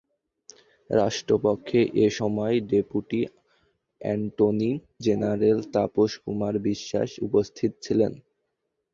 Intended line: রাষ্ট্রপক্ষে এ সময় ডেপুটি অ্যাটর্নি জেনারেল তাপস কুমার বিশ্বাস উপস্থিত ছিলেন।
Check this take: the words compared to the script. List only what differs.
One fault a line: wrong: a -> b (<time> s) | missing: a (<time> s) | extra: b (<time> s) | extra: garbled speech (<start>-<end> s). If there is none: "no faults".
no faults